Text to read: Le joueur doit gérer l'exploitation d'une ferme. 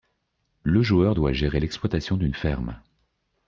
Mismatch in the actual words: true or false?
false